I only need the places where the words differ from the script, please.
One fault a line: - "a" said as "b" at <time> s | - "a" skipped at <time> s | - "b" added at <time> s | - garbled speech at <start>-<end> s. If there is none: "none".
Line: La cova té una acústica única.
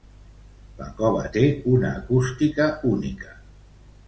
none